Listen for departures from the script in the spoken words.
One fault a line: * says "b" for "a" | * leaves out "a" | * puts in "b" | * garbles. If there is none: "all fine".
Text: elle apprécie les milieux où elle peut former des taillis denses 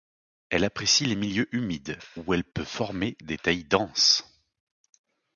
* puts in "humides"